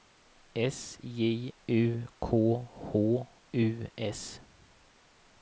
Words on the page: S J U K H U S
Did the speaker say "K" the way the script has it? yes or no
yes